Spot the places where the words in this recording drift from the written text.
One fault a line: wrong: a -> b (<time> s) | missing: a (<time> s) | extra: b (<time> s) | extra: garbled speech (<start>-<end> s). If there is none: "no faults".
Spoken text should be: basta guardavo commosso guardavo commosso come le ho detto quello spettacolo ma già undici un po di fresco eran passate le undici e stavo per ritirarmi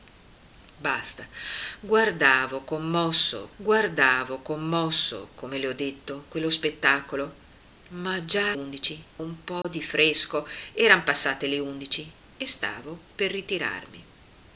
no faults